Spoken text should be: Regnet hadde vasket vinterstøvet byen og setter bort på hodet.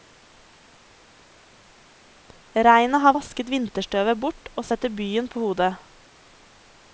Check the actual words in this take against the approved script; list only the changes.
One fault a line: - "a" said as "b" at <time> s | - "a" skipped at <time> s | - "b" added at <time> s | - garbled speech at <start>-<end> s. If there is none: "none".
- "hadde" said as "har" at 3.0 s
- "byen" said as "bort" at 4.3 s
- "bort" said as "byen" at 5.0 s